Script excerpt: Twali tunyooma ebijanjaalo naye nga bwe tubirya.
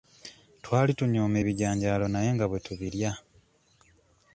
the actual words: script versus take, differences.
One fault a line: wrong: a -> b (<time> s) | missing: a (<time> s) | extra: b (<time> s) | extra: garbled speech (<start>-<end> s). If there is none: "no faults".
no faults